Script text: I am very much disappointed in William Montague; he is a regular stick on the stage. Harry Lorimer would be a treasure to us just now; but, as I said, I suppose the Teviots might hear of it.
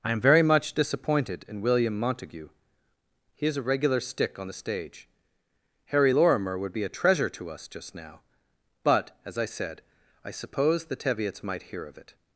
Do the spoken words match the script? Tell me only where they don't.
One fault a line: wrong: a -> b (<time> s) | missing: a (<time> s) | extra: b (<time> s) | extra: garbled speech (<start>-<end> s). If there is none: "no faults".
no faults